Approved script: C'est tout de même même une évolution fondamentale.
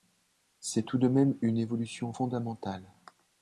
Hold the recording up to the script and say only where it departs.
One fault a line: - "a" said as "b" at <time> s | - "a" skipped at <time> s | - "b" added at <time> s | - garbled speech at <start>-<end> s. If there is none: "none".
- "même" skipped at 1.4 s